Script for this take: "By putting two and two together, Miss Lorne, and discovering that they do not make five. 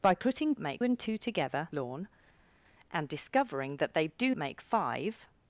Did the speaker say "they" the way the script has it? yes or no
yes